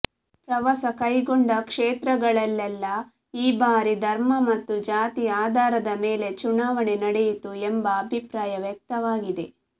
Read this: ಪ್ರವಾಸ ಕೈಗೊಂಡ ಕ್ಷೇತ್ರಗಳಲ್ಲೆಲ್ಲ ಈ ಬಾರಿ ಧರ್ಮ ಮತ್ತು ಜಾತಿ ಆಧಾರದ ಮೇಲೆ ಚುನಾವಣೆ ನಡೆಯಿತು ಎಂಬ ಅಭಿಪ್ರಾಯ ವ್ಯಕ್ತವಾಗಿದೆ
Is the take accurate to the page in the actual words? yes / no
yes